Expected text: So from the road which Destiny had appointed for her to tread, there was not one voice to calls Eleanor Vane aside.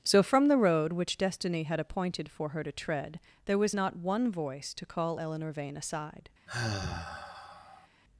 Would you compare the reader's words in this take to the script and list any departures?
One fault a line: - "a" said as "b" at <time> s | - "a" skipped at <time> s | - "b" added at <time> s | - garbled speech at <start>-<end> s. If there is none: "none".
- "calls" said as "call" at 4.8 s